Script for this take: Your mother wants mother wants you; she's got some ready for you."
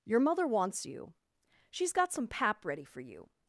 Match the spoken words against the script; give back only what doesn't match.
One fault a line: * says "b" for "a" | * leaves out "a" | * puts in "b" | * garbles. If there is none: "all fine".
* leaves out "mother wants"
* puts in "pap"